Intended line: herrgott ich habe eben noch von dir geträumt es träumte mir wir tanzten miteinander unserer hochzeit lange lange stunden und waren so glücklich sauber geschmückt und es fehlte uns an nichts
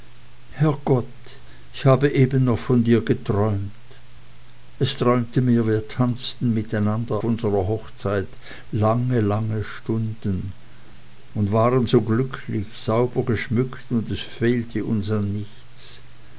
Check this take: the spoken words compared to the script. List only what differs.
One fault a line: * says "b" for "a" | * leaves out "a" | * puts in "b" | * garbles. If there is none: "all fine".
all fine